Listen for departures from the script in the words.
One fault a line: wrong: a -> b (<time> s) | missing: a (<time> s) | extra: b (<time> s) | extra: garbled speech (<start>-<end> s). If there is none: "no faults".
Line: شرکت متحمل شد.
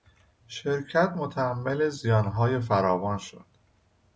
extra: زیانهای فراوان (1.9 s)